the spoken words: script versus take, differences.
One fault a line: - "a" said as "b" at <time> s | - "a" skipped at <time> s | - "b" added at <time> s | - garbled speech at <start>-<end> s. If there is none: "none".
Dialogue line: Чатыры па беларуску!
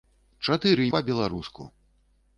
none